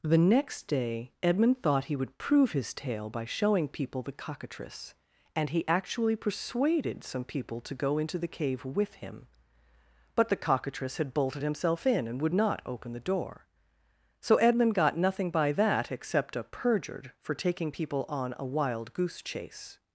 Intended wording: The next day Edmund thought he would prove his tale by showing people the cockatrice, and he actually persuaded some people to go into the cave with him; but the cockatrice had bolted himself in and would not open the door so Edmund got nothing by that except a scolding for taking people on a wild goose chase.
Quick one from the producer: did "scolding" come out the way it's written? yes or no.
no